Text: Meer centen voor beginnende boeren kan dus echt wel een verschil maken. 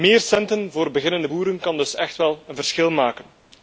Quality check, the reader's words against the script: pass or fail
pass